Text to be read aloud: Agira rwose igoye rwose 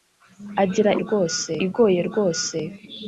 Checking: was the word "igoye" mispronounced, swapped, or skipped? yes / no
no